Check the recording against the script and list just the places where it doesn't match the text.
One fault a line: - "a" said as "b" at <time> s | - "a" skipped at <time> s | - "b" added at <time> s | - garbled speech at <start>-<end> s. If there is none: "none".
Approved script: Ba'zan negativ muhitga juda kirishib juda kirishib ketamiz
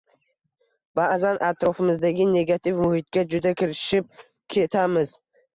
- "atrofimizdagi" added at 1.5 s
- "juda kirishib" skipped at 4.1 s